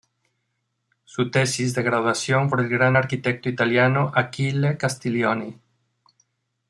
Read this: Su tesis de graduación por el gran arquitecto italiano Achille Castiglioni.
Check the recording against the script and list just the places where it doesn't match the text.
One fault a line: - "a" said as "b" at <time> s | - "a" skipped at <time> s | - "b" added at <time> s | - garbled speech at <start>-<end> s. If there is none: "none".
none